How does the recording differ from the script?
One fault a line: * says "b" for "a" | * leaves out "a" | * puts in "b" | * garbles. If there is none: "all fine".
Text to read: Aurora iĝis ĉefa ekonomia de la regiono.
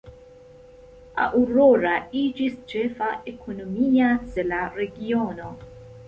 all fine